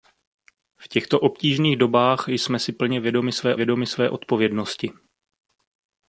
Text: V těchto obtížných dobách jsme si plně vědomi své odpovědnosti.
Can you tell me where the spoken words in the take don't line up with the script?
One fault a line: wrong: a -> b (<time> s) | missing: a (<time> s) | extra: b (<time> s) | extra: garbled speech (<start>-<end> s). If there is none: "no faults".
extra: vědomi své (3.5 s)